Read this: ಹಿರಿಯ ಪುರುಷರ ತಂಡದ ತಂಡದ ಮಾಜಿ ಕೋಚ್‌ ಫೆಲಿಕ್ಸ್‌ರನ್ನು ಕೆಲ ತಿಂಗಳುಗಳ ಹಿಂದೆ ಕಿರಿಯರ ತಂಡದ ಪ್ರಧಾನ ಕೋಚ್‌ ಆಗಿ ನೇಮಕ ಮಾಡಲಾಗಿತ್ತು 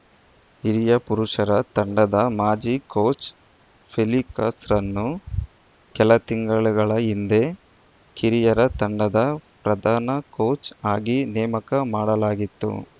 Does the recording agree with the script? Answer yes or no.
no